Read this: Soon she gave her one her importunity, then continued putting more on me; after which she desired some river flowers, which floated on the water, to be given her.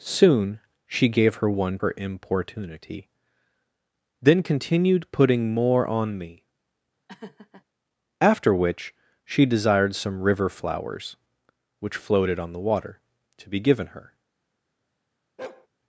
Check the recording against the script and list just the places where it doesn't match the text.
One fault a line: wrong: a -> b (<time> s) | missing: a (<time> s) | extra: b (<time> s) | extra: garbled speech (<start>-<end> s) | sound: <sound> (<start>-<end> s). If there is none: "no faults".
sound: laugh (7.1-7.6 s)
sound: bark (15.4-15.7 s)